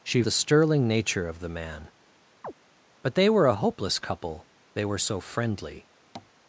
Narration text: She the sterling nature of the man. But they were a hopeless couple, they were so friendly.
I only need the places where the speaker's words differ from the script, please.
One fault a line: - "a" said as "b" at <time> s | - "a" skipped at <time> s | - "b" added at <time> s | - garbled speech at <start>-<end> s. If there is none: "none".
none